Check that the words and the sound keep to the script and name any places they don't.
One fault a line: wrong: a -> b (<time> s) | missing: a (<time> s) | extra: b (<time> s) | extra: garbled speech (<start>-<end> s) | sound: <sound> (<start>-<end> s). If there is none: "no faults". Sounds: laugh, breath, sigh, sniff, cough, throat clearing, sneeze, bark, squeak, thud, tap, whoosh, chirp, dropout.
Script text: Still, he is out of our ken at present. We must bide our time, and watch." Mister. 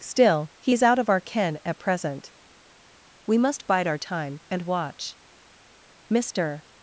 no faults